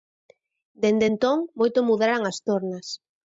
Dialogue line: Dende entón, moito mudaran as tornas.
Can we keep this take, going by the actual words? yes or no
yes